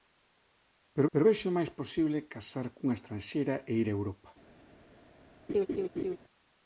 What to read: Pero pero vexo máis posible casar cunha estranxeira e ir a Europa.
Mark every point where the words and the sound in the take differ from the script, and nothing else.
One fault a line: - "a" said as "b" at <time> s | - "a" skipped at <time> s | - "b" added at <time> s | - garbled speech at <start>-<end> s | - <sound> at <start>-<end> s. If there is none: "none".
- laugh at 5.5-6.2 s